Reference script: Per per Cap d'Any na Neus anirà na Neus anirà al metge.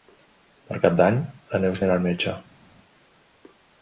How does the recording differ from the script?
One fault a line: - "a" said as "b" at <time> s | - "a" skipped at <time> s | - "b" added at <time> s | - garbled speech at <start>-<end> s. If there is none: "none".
- "per" skipped at 0.8 s
- "na Neus anirà" skipped at 2.0 s